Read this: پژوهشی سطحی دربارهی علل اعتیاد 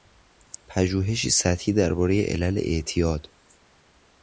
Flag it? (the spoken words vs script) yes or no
no